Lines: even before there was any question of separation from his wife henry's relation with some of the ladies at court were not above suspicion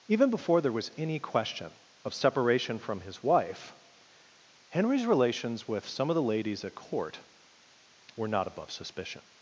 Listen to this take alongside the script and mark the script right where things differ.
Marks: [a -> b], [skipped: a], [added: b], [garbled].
even before there was any question of separation from his wife henry's [relation -> relations] with some of the ladies at court were not above suspicion